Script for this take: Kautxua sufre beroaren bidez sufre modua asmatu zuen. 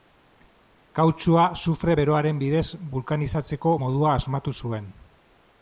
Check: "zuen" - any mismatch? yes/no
no